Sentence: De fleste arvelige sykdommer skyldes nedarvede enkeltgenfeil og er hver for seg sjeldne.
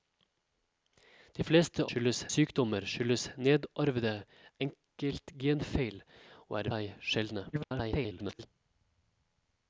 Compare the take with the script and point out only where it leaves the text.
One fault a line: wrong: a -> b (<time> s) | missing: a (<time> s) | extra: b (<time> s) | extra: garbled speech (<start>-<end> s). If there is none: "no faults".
wrong: arvelige -> skyldes (1.9 s)
missing: hver for (6.7 s)
extra: garbled speech (7.5-8.5 s)